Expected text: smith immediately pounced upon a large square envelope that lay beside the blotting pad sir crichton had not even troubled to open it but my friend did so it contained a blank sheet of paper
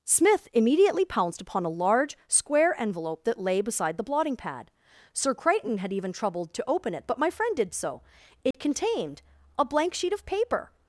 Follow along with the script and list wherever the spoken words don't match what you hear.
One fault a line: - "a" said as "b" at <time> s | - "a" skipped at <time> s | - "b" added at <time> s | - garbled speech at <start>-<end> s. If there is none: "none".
- "not" skipped at 5.9 s